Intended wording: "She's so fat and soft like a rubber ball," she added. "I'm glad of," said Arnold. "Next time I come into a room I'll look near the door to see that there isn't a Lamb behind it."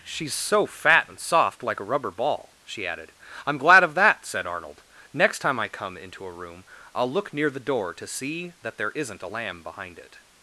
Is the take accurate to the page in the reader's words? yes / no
no